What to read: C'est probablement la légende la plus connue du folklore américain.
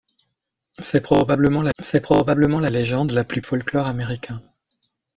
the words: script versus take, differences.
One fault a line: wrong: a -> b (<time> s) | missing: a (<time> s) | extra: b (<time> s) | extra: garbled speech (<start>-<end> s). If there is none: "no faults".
extra: c'est probablement la (1.8 s)
missing: connue du (3.4 s)